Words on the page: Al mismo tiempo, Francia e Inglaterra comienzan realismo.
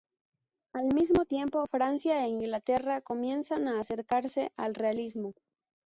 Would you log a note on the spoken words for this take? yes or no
yes